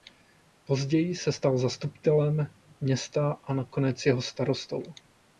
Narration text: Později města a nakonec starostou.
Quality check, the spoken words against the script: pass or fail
fail